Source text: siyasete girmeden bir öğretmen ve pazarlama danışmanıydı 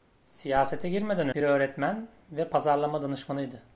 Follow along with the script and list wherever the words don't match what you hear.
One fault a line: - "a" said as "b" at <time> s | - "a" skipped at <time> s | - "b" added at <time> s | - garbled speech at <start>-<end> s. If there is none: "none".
none